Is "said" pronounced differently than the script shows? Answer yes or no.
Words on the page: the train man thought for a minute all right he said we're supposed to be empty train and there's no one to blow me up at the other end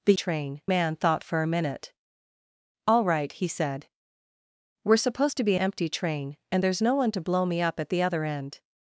no